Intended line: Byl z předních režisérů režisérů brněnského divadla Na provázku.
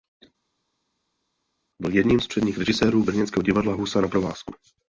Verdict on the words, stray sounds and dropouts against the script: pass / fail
fail